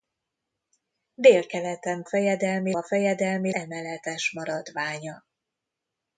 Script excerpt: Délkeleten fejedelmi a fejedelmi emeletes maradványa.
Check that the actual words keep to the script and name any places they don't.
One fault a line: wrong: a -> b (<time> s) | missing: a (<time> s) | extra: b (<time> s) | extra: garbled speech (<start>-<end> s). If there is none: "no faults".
no faults